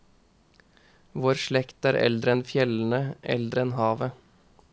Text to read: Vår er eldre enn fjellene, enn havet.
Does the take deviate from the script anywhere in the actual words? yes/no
yes